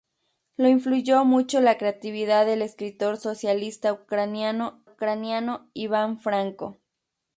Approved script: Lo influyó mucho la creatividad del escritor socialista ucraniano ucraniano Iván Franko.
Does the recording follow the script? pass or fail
pass